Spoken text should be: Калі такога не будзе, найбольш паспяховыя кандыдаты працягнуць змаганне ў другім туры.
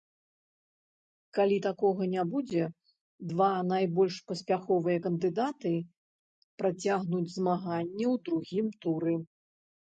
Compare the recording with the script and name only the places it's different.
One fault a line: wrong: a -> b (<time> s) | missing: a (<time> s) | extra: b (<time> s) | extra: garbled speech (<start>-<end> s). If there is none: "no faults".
extra: два (3.3 s)